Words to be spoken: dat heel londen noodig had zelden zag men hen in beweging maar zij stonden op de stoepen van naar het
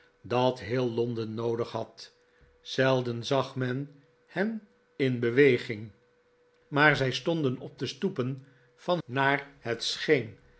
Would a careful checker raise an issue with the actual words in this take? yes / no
no